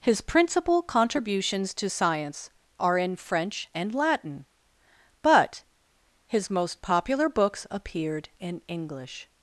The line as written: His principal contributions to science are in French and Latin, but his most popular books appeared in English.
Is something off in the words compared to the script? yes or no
no